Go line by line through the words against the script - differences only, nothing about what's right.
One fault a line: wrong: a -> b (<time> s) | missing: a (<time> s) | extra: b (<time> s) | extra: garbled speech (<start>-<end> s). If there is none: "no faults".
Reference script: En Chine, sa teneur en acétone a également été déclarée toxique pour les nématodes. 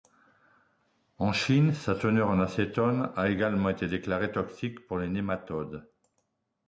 no faults